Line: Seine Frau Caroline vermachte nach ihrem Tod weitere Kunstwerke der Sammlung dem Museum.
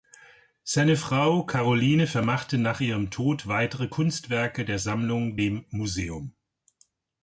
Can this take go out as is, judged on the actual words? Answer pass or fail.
pass